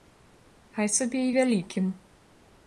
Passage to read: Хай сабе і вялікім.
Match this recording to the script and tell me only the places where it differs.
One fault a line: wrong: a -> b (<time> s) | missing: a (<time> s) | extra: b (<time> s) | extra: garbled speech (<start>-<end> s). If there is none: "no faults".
no faults